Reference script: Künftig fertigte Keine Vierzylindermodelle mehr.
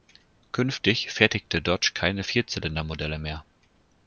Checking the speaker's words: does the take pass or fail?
fail